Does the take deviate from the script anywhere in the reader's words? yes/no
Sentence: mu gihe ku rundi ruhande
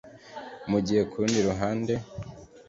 no